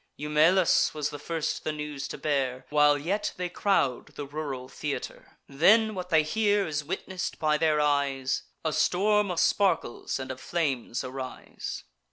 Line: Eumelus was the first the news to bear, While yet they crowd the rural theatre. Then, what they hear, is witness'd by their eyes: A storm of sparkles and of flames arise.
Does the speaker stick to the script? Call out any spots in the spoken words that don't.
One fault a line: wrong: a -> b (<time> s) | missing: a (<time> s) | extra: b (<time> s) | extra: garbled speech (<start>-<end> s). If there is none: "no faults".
no faults